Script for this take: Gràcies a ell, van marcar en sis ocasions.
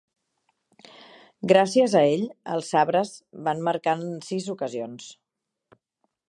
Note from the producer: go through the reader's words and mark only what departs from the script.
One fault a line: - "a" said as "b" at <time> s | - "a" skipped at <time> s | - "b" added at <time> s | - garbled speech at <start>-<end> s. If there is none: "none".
- "els Sabres" added at 2.5 s